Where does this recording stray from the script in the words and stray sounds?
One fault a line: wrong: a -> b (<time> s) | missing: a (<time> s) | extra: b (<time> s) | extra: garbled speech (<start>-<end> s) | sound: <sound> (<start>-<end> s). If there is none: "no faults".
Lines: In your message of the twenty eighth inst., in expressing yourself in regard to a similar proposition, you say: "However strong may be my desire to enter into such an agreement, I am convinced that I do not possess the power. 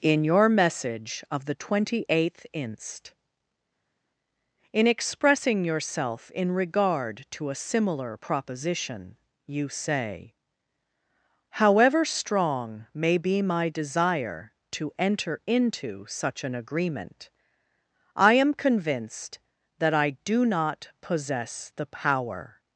no faults